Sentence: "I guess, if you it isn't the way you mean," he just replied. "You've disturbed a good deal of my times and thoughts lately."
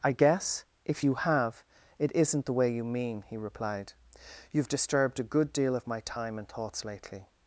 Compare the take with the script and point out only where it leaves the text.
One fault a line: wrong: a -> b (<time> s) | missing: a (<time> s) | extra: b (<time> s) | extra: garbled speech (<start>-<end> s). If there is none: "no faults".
extra: have (1.1 s)
missing: just (3.4 s)
wrong: times -> time (6.0 s)